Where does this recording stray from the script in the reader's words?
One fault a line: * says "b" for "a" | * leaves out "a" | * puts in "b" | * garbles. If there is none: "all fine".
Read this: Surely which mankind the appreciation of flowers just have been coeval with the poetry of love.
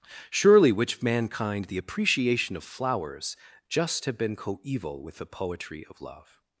all fine